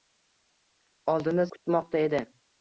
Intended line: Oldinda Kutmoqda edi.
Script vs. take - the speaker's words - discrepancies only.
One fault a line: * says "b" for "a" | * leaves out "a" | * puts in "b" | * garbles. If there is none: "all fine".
all fine